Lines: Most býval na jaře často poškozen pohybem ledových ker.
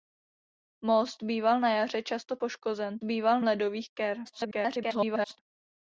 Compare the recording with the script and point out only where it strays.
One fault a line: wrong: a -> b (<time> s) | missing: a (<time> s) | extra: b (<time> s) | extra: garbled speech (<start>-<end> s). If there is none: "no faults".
wrong: pohybem -> býval (3.0 s)
extra: garbled speech (4.2-5.4 s)